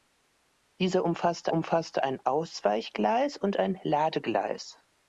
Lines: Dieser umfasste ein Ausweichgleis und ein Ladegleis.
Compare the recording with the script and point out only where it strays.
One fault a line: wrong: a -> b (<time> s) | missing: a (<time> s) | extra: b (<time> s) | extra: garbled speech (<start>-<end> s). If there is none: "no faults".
extra: umfasste (1.5 s)